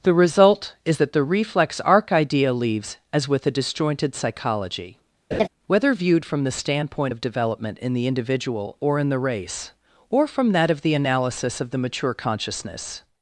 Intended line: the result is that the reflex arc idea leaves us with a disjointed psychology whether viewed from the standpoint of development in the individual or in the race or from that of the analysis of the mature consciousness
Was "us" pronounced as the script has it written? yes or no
no